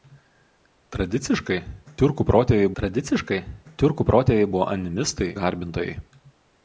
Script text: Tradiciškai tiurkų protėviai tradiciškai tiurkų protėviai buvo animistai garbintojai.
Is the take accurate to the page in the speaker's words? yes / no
yes